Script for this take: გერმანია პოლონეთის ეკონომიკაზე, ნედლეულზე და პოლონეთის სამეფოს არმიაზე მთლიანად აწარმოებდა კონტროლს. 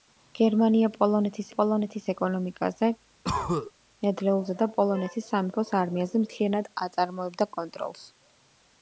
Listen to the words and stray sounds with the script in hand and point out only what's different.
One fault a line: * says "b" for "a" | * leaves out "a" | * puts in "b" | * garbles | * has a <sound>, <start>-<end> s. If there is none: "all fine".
* puts in "პოლონეთის"
* has a cough, 3.2-3.7 s